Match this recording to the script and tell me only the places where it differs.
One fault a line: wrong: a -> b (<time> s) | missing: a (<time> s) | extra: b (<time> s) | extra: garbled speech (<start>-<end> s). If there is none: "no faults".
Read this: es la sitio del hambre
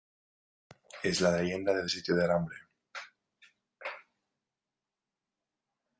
extra: leyenda del (1.4 s)